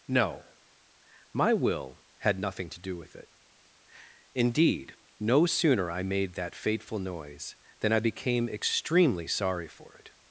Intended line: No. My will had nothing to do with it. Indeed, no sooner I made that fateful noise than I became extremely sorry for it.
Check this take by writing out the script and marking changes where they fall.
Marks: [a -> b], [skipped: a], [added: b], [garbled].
No. My will had nothing to do with it. Indeed, no sooner I made that fateful noise than I became extremely sorry for it.